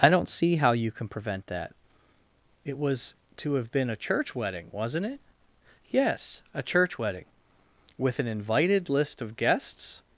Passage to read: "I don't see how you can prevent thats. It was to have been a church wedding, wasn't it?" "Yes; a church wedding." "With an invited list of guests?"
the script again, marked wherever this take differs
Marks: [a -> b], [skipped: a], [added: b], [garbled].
"I don't see how you can prevent [thats. -> that] It was to have been a church wedding, wasn't it?" "Yes; a church wedding." "With an invited list of guests?"